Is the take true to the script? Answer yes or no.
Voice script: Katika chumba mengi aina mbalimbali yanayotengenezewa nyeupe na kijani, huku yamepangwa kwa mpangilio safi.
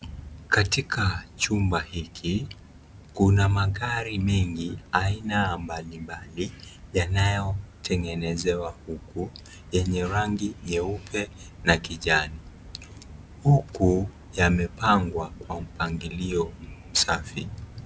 no